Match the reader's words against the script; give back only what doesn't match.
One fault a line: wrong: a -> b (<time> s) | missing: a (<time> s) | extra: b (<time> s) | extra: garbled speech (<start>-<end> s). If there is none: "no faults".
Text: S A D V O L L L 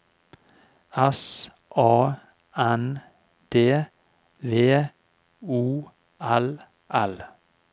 extra: N (2.6 s)
missing: L (7.2 s)